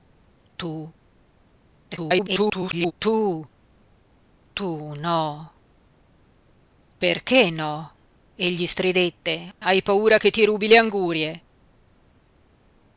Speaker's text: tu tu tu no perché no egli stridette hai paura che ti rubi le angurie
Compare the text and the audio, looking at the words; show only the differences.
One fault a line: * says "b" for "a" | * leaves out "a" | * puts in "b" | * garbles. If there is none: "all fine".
* garbles